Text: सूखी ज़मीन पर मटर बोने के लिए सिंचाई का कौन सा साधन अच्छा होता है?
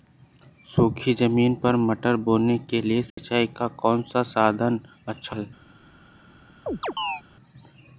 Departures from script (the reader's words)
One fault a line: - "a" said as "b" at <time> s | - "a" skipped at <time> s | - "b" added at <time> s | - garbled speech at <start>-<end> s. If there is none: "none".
- "होता" skipped at 5.4 s